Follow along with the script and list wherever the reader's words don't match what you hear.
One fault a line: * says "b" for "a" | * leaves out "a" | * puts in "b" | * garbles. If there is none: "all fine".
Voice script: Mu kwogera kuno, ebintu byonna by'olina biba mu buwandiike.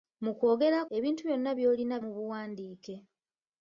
* leaves out "kuno"
* leaves out "biba"